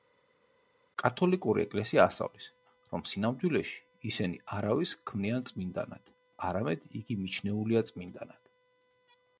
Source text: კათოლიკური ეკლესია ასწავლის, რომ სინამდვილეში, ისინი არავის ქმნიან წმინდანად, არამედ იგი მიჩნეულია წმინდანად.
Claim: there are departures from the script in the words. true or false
false